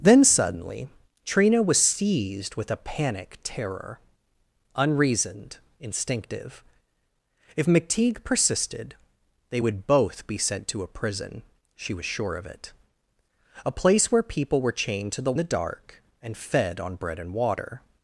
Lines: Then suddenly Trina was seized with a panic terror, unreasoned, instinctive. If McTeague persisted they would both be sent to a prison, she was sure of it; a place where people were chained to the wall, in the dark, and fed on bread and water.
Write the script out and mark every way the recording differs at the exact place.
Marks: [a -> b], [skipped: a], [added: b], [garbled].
Then suddenly Trina was seized with a panic terror, unreasoned, instinctive. If McTeague persisted they would both be sent to a prison, she was sure of it; a place where people were chained to the [skipped: wall, in] the dark, and fed on bread and water.